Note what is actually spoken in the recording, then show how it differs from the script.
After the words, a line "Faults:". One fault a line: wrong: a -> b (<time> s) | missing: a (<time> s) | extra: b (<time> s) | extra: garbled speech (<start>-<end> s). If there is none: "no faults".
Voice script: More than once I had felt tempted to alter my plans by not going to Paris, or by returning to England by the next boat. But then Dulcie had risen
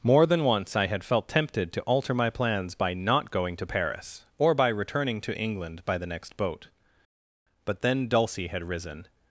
More than once I had felt tempted to alter my plans by not going to Paris, or by returning to England by the next boat. But then Dulcie had risen
Faults:
no faults